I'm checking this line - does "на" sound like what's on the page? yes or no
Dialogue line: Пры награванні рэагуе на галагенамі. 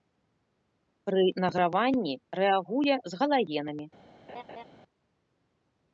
no